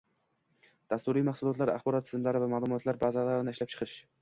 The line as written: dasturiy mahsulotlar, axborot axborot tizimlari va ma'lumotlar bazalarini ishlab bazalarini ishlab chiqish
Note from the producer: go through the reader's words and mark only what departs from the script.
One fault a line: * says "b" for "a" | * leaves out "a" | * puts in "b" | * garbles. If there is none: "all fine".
* leaves out "axborot"
* leaves out "bazalarini ishlab"